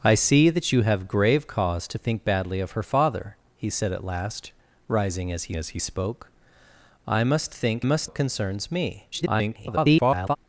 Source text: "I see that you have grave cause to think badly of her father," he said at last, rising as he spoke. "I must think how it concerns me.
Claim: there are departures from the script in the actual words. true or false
true